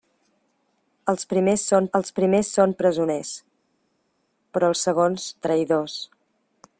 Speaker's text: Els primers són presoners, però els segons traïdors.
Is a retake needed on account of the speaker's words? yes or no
yes